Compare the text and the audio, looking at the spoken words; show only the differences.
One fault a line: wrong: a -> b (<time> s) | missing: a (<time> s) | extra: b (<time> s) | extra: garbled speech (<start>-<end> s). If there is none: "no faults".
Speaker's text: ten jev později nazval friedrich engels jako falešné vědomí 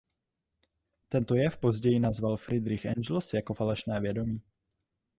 wrong: ten -> tento (1.1 s)